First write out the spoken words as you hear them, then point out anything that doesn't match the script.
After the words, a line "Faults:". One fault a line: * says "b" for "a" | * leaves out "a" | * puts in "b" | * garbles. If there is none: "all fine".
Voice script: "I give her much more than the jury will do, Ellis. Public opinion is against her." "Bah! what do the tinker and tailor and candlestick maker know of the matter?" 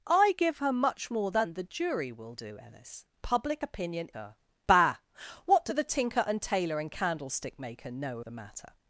"I give her much more than the jury will do, Ellis. Public opinion her." "Bah! what do the tinker and tailor and candlestick maker know the matter?"
Faults:
* leaves out "is against"
* leaves out "of"